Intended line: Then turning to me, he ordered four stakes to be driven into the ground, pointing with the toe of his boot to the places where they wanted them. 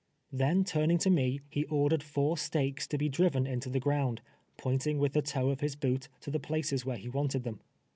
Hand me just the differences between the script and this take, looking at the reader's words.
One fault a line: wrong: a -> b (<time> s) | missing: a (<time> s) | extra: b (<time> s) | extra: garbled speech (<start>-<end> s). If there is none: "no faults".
wrong: they -> he (7.0 s)